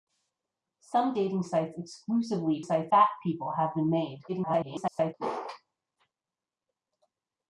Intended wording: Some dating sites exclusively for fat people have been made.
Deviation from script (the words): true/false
true